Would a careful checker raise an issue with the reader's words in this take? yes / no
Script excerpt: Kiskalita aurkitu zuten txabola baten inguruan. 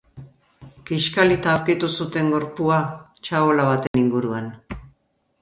yes